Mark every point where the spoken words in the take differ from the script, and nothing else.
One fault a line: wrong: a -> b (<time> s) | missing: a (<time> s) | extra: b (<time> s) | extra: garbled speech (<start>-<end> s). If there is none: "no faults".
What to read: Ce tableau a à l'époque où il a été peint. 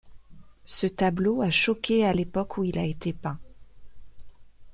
extra: choqué (1.5 s)